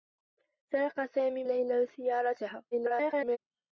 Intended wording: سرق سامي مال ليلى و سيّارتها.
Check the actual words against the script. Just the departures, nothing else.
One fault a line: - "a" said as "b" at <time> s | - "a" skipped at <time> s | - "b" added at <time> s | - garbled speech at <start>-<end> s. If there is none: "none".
- "مال" skipped at 1.4 s
- garbled speech at 2.7-3.4 s